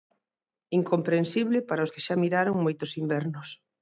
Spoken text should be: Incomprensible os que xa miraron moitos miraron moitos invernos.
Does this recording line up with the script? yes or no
no